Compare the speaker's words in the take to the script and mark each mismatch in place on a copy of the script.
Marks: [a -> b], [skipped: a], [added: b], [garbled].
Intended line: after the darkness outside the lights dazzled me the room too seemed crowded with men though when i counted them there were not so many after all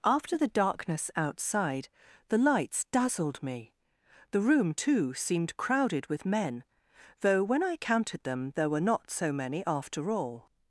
after the darkness outside the lights dazzled me the room too seemed crowded with men though when i counted them there were not so many after all